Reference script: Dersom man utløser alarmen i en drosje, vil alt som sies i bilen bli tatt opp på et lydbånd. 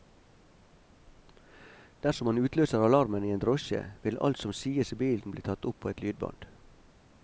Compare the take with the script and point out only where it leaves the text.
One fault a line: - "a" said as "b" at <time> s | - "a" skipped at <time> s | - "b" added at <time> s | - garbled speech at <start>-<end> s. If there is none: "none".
none